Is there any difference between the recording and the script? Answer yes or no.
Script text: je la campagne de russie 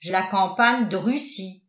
no